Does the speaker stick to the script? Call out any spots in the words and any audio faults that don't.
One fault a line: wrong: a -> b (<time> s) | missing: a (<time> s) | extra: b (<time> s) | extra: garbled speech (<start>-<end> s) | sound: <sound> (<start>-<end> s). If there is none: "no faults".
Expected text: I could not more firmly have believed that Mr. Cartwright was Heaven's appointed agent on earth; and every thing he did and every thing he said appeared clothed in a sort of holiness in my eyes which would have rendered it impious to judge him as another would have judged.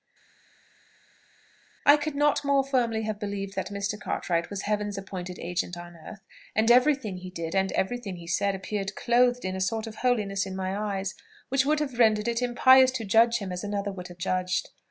no faults